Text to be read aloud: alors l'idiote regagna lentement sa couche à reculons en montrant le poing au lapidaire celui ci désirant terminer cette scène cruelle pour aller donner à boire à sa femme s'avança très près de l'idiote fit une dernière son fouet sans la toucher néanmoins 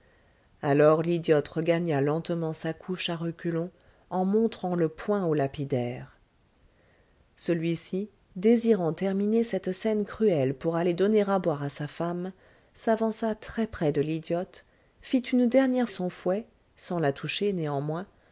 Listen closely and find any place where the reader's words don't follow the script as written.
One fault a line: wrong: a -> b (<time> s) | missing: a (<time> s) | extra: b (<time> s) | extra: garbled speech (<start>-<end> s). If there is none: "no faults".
no faults